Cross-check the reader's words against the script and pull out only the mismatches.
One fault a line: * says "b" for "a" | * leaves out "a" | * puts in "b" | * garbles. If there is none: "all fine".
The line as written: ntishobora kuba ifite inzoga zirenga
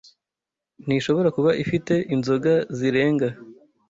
all fine